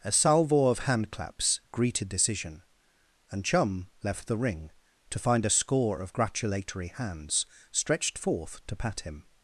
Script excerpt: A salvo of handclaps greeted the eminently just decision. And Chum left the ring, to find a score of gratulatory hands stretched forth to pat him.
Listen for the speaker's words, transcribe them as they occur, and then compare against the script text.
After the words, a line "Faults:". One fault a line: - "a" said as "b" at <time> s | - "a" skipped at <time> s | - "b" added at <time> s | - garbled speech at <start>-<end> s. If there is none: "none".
A salvo of handclaps greeted decision. And Chum left the ring, to find a score of gratulatory hands stretched forth to pat him.
Faults:
- "the eminently just" skipped at 2.1 s